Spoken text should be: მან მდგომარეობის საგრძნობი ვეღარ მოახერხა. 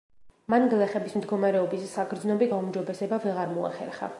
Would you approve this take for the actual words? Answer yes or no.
no